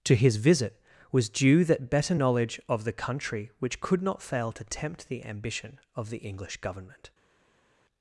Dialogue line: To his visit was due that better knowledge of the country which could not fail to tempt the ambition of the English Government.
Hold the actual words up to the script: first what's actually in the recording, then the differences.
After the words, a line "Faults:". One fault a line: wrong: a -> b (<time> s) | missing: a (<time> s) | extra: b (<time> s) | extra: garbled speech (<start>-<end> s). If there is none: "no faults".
To his visit was due that better knowledge of the country which could not fail to tempt the ambition of the English Government.
Faults:
no faults